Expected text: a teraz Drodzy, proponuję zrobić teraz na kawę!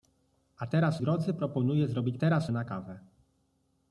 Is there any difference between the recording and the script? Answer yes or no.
no